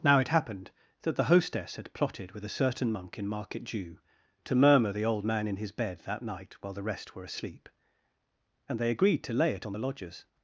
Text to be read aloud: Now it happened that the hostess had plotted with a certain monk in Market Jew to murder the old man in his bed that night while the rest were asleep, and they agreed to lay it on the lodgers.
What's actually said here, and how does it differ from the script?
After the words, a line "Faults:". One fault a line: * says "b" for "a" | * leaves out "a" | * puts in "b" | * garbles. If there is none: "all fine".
Now it happened that the hostess had plotted with a certain monk in Market Jew to murmur the old man in his bed that night while the rest were asleep, and they agreed to lay it on the lodgers.
Faults:
* says "murmur" for "murder"